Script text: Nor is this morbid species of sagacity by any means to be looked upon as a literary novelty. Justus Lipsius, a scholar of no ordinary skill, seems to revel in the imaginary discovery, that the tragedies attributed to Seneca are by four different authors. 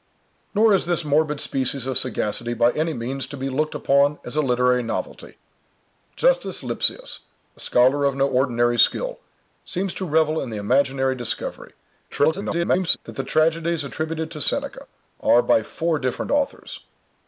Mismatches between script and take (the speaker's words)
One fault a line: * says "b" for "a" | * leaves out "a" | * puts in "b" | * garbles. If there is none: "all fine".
* garbles